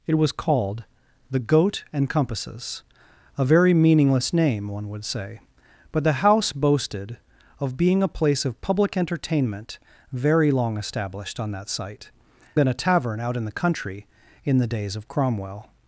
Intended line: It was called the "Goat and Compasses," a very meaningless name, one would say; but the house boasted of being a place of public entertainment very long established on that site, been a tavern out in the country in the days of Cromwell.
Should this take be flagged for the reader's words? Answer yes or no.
no